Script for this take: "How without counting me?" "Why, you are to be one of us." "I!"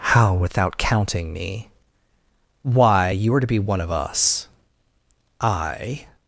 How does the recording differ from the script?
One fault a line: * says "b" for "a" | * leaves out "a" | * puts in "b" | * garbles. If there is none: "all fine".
all fine